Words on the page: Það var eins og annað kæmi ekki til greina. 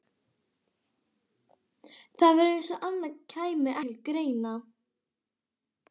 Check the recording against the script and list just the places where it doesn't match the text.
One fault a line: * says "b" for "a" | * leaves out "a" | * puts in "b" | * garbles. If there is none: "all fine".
* leaves out "ekki"